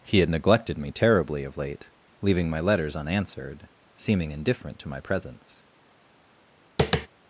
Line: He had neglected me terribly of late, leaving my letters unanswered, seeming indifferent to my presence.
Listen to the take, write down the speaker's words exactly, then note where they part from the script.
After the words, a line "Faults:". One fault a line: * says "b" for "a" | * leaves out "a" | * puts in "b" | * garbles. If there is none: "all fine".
He had neglected me terribly of late, leaving my letters unanswered, seeming indifferent to my presence.
Faults:
all fine